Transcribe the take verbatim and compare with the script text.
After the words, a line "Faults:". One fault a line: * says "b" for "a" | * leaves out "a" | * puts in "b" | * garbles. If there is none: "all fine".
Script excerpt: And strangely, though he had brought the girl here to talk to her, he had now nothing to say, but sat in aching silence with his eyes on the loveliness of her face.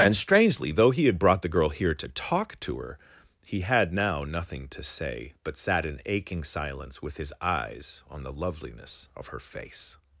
And strangely, though he had brought the girl here to talk to her, he had now nothing to say, but sat in aching silence with his eyes on the loveliness of her face.
Faults:
all fine